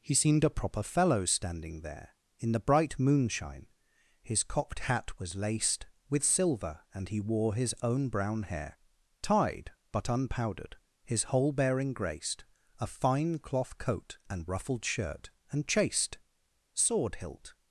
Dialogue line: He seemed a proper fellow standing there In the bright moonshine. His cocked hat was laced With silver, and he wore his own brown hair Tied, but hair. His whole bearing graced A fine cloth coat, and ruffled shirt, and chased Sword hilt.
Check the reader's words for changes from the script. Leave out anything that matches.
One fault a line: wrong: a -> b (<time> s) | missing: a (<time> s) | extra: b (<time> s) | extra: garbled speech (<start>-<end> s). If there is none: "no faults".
wrong: hair -> unpowdered (10.1 s)